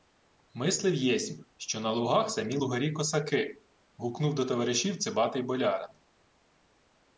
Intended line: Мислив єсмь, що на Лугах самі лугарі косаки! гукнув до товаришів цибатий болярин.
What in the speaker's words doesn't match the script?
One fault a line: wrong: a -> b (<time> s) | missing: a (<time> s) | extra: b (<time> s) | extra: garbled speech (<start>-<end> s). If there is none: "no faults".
no faults